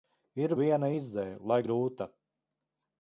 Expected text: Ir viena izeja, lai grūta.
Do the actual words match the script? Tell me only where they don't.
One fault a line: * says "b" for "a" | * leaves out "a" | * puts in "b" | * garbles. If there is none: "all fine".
all fine